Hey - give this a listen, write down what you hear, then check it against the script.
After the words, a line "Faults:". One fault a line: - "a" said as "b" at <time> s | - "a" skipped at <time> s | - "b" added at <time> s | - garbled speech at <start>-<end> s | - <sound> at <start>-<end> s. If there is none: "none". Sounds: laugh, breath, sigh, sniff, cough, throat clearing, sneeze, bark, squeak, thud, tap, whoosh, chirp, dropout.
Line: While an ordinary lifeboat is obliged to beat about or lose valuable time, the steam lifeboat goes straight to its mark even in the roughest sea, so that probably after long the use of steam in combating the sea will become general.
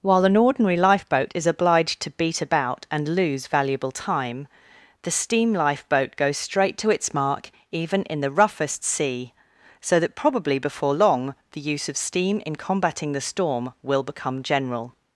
While an ordinary lifeboat is obliged to beat about and lose valuable time, the steam lifeboat goes straight to its mark even in the roughest sea, so that probably before long the use of steam in combating the storm will become general.
Faults:
- "or" said as "and" at 2.9 s
- "after" said as "before" at 10.6 s
- "sea" said as "storm" at 13.2 s